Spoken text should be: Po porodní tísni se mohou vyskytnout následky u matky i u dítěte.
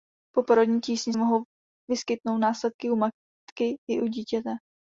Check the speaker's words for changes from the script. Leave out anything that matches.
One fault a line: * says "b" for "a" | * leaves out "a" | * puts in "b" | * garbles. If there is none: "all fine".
* leaves out "se"